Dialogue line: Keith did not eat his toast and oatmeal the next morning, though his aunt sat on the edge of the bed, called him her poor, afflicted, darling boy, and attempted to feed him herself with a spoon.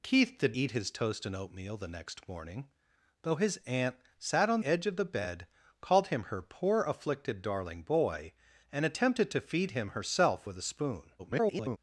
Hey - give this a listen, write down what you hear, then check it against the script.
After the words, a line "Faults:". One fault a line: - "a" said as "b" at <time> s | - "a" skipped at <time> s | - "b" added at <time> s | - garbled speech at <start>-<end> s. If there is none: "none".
Keith did eat his toast and oatmeal the next morning, though his aunt sat on edge of the bed, called him her poor, afflicted, darling boy, and attempted to feed him herself with a spoon. [garbled]
Faults:
- "not" skipped at 0.6 s
- "the" skipped at 4.6 s
- garbled speech at 11.2-11.8 s